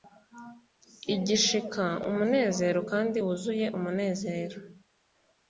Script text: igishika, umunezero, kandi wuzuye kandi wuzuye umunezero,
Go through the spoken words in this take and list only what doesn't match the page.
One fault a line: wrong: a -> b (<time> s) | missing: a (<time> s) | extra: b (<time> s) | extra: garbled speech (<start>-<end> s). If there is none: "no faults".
missing: kandi wuzuye (3.7 s)